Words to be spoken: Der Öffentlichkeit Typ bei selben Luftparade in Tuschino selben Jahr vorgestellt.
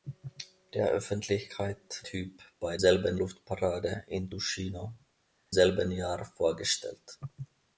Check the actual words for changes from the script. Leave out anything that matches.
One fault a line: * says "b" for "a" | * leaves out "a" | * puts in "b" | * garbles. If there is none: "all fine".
all fine